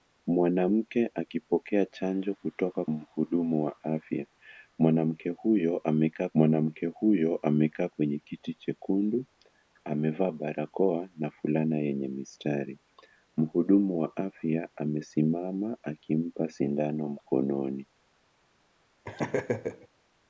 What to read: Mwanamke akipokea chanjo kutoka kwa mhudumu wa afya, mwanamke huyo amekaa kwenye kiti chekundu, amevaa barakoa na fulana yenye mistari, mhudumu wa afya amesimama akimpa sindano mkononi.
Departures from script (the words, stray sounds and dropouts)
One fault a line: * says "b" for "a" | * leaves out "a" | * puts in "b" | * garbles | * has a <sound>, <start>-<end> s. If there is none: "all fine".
* leaves out "kwa"
* puts in "mwanamke huyo amekaa"
* has a laugh, 19.0-19.9 s